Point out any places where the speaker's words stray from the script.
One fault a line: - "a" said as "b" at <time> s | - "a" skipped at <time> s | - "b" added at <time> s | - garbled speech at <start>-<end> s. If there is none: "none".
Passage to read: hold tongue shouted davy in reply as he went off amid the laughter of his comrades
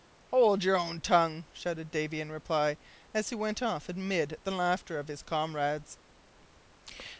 - "your own" added at 0.6 s